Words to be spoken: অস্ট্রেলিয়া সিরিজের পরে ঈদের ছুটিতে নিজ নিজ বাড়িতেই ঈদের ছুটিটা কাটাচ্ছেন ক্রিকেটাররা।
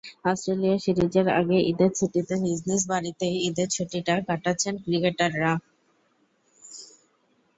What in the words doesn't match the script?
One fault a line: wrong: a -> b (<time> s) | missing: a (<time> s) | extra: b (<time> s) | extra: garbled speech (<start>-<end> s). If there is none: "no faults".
wrong: পরে -> আগে (1.4 s)